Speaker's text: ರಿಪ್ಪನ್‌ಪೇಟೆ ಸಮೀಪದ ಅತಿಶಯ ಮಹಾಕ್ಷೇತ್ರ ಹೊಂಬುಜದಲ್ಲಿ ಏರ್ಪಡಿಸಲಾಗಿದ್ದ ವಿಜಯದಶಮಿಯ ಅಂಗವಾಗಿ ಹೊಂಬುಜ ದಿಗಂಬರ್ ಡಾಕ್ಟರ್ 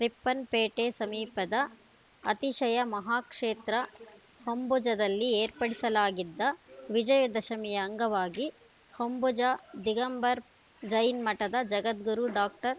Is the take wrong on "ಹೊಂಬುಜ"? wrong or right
right